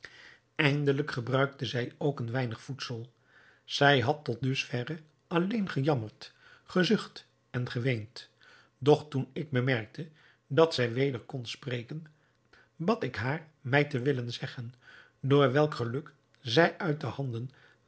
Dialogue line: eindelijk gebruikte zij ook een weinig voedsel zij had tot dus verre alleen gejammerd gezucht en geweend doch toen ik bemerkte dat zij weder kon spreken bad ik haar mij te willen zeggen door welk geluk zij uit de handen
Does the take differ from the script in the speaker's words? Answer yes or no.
no